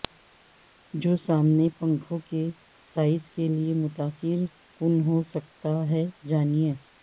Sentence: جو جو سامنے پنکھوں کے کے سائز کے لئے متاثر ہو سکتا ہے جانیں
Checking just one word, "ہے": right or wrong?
right